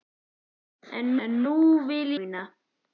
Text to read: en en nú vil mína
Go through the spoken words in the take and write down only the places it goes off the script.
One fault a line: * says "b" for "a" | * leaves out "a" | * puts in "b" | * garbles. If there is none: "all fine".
all fine